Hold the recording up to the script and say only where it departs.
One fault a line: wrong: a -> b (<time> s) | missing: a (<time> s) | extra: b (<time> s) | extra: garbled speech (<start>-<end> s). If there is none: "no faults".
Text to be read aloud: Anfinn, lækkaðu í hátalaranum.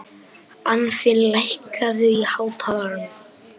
no faults